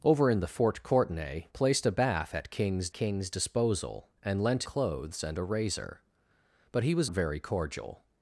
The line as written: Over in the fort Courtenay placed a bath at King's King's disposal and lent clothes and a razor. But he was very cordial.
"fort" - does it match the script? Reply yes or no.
yes